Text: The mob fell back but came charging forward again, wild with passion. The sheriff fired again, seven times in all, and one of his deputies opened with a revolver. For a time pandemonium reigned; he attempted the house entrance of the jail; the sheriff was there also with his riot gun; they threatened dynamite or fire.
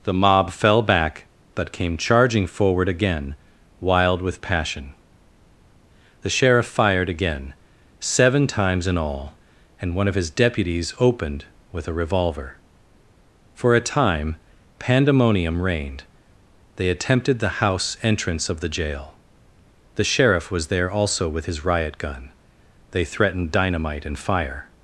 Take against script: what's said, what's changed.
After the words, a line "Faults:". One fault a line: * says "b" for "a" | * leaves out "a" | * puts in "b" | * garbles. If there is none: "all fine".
The mob fell back but came charging forward again, wild with passion. The sheriff fired again, seven times in all, and one of his deputies opened with a revolver. For a time pandemonium reigned; they attempted the house entrance of the jail; the sheriff was there also with his riot gun; they threatened dynamite and fire.
Faults:
* says "they" for "he"
* says "and" for "or"